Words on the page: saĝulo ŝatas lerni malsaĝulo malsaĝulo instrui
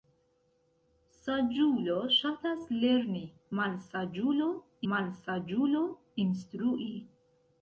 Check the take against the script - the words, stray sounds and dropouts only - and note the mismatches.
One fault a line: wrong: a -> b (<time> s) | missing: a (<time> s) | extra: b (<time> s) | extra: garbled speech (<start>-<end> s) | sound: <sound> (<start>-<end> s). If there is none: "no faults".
no faults